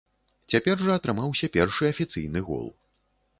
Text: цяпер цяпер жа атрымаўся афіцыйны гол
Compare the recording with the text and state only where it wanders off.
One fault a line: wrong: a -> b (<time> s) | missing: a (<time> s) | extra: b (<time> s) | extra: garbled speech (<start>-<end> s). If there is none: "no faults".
missing: цяпер (0.8 s)
extra: першы (1.6 s)